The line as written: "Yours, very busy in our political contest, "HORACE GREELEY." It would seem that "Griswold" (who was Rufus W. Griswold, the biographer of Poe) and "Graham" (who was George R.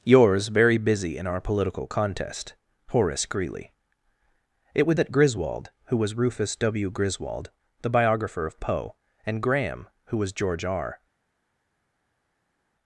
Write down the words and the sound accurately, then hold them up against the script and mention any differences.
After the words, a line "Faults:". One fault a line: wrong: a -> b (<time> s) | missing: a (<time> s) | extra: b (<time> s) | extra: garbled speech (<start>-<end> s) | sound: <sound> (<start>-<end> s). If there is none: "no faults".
"Yours, very busy in our political contest, "HORACE GREELEY." It would that "Griswold" (who was Rufus W. Griswold, the biographer of Poe) and "Graham" (who was George R.
Faults:
missing: seem (5.0 s)